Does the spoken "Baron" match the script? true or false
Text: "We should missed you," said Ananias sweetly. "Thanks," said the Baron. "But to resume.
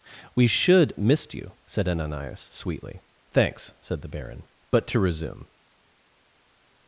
true